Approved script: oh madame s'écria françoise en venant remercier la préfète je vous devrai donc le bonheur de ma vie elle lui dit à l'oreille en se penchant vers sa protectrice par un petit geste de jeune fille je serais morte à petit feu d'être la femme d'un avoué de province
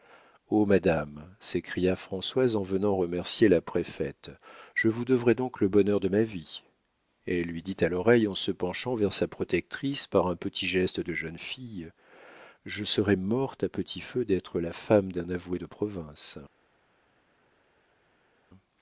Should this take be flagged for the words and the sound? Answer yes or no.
no